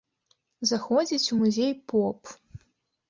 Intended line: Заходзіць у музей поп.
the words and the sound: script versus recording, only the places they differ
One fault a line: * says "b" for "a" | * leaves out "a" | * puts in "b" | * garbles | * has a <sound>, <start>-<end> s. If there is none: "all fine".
all fine